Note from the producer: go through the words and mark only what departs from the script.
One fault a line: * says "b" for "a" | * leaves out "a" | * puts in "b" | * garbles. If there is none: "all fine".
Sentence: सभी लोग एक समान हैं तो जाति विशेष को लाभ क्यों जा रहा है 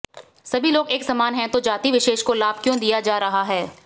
* puts in "दिया"